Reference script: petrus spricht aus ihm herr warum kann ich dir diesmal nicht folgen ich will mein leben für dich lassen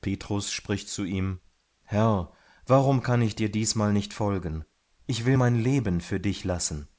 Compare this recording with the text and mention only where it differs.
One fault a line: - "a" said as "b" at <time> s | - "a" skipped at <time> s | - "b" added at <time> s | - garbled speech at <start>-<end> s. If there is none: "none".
- "aus" said as "zu" at 0.9 s